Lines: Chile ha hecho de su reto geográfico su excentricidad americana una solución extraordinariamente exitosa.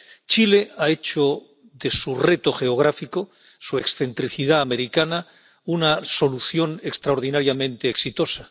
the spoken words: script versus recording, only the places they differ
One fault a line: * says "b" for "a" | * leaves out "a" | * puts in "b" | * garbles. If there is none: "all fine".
all fine